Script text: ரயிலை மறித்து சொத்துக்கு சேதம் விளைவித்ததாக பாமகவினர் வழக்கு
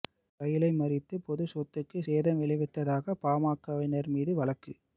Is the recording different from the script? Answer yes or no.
yes